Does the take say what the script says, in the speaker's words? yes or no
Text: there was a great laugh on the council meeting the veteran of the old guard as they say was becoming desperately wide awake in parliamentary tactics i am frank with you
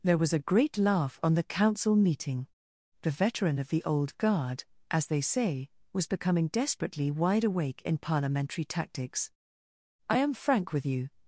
yes